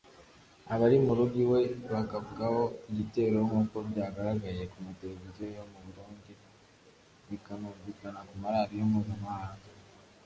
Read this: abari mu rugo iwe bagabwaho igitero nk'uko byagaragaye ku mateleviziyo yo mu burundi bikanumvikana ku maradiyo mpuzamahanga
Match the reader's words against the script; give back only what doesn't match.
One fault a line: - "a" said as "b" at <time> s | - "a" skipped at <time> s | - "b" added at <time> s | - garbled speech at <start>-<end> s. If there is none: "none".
none